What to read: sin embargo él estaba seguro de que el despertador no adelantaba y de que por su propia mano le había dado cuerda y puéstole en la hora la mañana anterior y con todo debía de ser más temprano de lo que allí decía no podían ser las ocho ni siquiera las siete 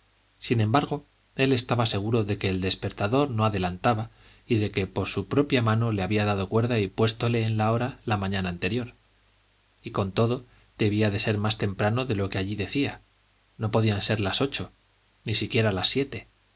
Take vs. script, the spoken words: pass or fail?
pass